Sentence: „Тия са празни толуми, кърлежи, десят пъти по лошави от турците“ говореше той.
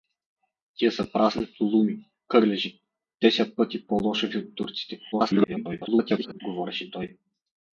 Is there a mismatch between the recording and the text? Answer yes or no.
yes